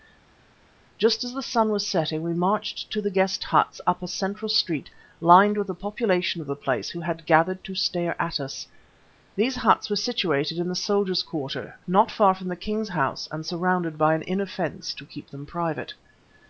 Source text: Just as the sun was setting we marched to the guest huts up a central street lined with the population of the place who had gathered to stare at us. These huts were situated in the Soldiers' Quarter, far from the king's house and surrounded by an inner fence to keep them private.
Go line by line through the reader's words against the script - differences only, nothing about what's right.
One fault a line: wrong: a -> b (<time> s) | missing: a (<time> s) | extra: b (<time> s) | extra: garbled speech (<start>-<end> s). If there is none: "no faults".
extra: not (11.9 s)